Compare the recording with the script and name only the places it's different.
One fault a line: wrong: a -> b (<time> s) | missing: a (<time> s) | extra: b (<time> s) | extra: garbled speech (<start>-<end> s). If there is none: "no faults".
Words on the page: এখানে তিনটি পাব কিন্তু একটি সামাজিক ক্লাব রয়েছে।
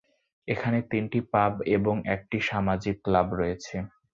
wrong: কিন্তু -> এবং (1.8 s)